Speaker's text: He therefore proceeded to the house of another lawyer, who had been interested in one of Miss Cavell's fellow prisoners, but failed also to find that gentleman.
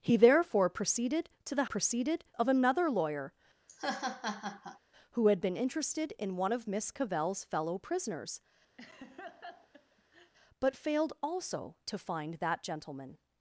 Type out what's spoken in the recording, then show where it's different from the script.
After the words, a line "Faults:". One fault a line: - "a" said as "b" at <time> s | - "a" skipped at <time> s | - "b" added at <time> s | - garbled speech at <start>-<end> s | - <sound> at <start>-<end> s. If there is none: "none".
He therefore proceeded to the proceeded of another lawyer, who had been interested in one of Miss Cavell's fellow prisoners, but failed also to find that gentleman.
Faults:
- "house" said as "proceeded" at 1.6 s
- laugh at 3.7-4.8 s
- laugh at 8.8-10.3 s